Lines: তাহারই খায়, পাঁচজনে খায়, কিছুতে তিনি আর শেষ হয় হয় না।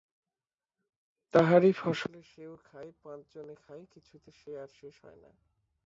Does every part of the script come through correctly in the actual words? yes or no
no